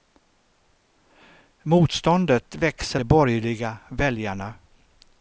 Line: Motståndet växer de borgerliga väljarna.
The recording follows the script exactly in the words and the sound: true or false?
true